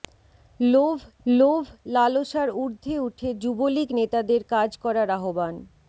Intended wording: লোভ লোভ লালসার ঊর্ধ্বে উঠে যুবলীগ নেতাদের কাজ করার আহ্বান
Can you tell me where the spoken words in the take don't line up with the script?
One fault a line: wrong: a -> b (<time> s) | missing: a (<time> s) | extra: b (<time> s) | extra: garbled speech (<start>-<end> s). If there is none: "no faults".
no faults